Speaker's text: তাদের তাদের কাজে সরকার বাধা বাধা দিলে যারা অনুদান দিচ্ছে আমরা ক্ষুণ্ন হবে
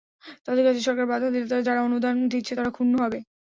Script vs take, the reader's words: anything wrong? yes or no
yes